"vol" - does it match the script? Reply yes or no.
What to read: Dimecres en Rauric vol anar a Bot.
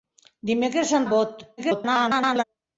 no